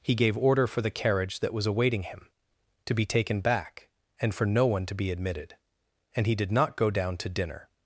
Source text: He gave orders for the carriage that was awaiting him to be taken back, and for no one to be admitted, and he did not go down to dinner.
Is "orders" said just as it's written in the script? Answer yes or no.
no